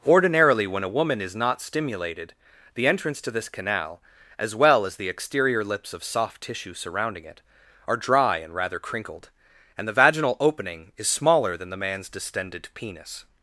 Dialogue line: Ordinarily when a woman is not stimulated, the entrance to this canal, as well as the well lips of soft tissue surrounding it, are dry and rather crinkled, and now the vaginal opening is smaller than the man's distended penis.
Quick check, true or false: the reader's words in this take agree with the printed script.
false